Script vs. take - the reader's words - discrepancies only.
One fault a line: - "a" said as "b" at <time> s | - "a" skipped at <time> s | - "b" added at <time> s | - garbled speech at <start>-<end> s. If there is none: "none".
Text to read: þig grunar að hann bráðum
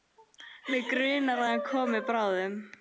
- "þig" said as "mig" at 0.8 s
- "komi" added at 1.7 s